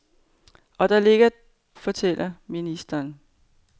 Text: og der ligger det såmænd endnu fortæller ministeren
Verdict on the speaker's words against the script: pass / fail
fail